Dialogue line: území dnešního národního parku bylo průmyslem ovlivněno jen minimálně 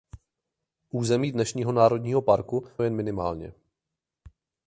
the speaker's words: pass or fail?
fail